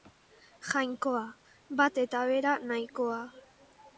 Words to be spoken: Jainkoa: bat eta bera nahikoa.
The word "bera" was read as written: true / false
true